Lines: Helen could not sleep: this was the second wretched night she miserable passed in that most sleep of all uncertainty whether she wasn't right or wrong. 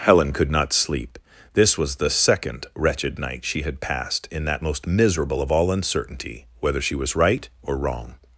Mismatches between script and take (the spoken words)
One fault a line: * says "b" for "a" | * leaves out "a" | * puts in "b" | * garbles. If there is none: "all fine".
* says "had" for "miserable"
* says "miserable" for "sleep"
* says "was" for "wasn't"